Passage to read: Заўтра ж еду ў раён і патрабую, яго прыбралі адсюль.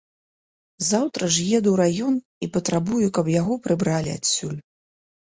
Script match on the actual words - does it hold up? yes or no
no